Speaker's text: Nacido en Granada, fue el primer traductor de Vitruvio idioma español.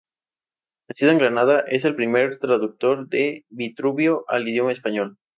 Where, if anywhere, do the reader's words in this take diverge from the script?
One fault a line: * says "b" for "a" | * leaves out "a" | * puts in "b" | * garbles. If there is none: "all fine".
* says "es" for "fue"
* puts in "al"